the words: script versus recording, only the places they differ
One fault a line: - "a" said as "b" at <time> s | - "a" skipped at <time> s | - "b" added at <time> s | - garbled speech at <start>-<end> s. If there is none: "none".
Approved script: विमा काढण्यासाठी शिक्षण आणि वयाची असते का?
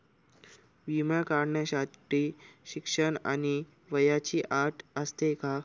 - "अट" added at 4.5 s